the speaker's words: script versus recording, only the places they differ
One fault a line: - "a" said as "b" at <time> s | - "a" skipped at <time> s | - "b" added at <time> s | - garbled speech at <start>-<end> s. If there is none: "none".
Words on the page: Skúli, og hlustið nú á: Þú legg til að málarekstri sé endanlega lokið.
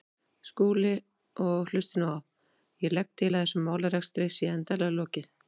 - "Þú" said as "Ég" at 2.9 s
- "þessum" added at 3.4 s